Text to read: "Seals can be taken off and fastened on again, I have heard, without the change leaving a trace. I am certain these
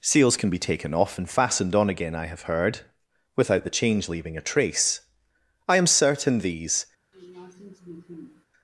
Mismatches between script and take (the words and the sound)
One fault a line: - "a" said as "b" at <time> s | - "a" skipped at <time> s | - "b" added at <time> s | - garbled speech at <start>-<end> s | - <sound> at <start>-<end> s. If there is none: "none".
- sniff at 7.1-8.5 s